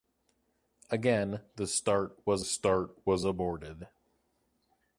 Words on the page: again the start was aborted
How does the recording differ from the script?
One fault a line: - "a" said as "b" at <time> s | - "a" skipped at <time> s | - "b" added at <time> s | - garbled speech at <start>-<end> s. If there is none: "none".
- "start was" added at 2.4 s